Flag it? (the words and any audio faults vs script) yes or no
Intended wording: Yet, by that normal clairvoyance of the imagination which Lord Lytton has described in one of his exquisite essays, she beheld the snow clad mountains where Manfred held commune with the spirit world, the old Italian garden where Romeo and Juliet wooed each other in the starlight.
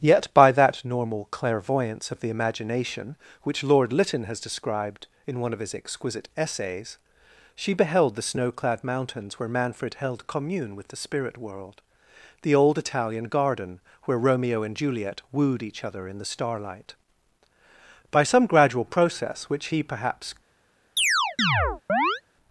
yes